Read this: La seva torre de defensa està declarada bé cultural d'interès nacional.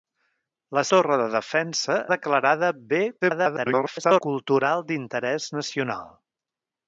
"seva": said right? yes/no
no